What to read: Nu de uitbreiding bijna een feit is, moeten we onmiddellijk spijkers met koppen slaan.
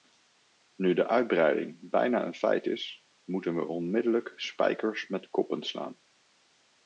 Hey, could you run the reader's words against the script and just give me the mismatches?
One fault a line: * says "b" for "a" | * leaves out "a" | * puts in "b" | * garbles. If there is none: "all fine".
all fine